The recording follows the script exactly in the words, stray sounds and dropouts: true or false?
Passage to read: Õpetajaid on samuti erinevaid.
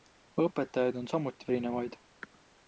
true